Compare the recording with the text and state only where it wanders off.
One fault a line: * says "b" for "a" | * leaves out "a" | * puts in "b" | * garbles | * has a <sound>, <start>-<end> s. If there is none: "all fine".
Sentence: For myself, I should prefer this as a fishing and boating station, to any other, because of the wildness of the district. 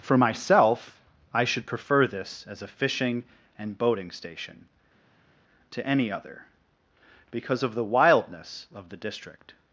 all fine